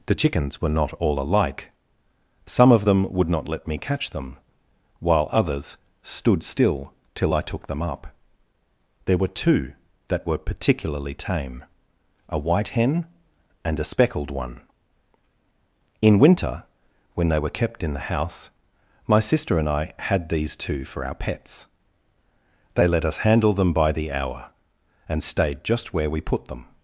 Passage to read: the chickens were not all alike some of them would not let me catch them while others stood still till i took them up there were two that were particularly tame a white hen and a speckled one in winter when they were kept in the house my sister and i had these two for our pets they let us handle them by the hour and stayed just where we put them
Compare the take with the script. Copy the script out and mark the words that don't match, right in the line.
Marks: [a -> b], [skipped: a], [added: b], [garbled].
the chickens were not all alike some of them would not let me catch them while others stood still till i took them up there were two that were particularly tame a white hen and a speckled one in winter when they were kept in the house my sister and i had these two for our pets they let us handle them by the hour and stayed just where we put them